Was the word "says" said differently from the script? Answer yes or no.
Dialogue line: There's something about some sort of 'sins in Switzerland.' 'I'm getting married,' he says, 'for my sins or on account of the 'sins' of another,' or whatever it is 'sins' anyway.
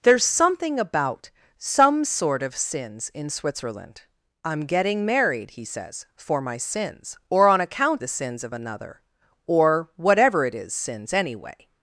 no